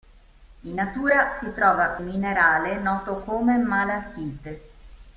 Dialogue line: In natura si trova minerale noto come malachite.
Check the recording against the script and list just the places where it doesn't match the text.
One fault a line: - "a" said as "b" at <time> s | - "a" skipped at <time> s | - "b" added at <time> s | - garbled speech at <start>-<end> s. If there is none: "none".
none